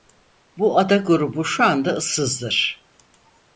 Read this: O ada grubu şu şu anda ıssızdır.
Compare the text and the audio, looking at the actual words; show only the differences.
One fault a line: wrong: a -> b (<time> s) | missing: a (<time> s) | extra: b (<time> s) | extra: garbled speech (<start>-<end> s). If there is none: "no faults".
wrong: O -> Bu (0.6 s)
missing: şu (1.6 s)